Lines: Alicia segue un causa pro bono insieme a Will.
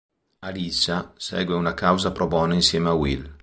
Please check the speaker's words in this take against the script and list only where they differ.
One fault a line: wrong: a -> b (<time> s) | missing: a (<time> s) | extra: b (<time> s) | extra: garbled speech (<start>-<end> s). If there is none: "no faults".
wrong: un -> una (1.5 s)